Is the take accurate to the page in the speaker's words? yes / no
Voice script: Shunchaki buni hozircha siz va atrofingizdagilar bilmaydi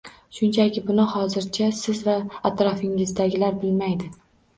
yes